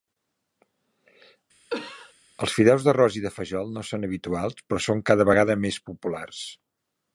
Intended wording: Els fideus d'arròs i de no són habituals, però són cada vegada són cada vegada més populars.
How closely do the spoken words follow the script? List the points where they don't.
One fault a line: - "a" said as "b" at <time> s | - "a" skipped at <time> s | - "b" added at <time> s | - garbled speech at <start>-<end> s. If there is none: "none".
- "fajol" added at 3.3 s
- "són cada vegada" skipped at 5.6 s